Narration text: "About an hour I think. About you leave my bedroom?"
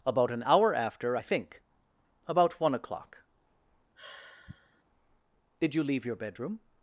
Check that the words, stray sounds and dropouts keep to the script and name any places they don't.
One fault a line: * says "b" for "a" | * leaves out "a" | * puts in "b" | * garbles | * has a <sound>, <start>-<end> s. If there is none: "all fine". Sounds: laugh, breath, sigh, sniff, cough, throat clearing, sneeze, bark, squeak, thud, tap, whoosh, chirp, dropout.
* puts in "after"
* puts in "one o'clock Did"
* has a sigh, 4.0-4.8 s
* says "your" for "my"